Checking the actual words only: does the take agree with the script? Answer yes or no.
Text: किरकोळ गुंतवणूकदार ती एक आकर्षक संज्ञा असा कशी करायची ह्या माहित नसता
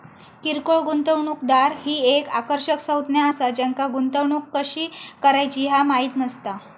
no